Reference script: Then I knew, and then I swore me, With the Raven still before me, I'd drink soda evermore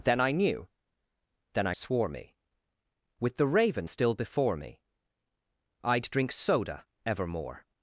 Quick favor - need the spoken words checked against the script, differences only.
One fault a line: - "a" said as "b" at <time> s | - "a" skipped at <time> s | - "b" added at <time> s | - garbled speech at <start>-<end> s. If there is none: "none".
- "and" skipped at 0.7 s